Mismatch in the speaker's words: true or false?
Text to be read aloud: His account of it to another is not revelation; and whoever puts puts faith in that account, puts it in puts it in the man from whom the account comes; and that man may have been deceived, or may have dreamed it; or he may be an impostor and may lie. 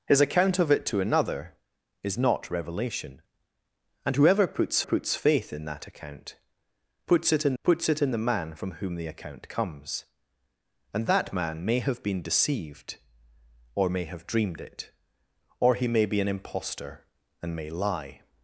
false